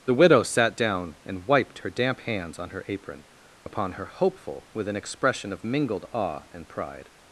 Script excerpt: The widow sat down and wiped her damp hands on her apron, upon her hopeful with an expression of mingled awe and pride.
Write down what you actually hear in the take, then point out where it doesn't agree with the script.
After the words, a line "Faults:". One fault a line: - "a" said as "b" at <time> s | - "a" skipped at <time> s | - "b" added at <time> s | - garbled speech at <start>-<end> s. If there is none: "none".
The widow sat down and wiped her damp hands on her apron, upon her hopeful with an expression of mingled awe and pride.
Faults:
none